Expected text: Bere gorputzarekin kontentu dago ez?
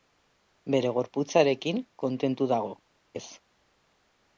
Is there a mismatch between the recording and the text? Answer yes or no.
no